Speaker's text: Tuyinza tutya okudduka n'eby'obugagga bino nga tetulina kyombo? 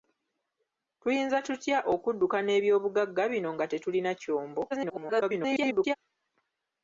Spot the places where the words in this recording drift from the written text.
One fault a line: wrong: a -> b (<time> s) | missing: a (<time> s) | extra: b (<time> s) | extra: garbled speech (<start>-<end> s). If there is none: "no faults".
extra: garbled speech (4.7-6.0 s)